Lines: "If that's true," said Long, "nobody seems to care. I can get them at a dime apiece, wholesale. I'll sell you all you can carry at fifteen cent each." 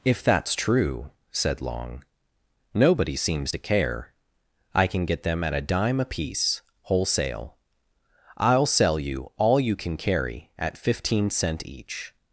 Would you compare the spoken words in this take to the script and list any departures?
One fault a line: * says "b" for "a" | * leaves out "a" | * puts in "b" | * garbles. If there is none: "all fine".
all fine